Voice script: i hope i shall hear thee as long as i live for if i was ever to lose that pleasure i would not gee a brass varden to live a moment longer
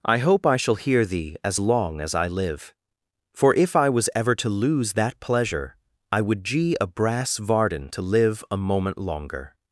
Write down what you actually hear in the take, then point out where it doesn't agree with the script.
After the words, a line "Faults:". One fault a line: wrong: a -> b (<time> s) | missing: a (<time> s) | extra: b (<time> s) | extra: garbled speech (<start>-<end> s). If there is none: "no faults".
i hope i shall hear thee as long as i live for if i was ever to lose that pleasure i would gee a brass varden to live a moment longer
Faults:
missing: not (6.4 s)